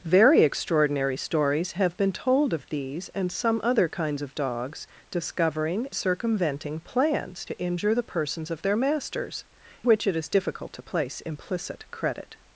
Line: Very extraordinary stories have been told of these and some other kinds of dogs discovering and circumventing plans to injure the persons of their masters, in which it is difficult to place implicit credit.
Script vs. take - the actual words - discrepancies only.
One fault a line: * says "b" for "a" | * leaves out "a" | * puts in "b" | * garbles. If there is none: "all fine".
* leaves out "and"
* leaves out "in"